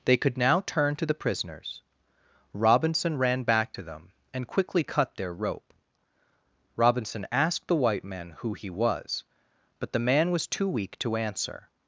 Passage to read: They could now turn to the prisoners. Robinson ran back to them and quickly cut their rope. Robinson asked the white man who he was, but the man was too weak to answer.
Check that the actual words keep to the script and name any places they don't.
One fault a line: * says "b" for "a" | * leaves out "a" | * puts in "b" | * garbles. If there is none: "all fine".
all fine